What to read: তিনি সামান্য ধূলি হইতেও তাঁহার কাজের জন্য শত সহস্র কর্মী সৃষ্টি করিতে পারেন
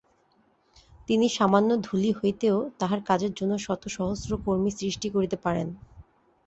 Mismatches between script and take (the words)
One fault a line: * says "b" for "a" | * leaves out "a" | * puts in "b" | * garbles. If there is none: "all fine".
all fine